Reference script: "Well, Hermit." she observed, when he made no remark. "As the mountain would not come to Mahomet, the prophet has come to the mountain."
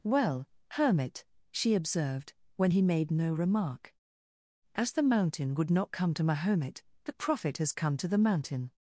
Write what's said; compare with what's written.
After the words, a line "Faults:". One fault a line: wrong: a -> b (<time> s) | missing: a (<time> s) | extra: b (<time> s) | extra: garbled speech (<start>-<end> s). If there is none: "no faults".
"Well, Hermit." she observed, when he made no remark. "As the mountain would not come to Mahomet, the prophet has come to the mountain."
Faults:
no faults